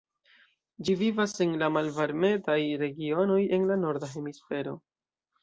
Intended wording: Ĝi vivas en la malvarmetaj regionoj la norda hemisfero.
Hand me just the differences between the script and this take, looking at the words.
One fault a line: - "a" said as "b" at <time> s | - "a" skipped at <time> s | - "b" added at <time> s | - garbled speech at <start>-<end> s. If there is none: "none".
- "en" added at 3.6 s